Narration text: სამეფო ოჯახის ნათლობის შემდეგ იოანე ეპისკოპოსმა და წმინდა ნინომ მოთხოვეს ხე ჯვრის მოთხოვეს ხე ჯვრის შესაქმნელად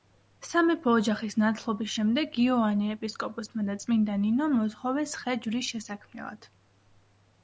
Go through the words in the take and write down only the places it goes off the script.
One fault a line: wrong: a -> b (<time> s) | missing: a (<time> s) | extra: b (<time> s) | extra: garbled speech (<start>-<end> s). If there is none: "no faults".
missing: მოთხოვეს ხე ჯვრის (5.7 s)